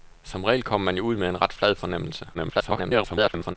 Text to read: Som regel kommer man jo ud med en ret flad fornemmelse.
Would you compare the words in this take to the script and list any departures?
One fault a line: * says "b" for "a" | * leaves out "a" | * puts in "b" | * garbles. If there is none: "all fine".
* garbles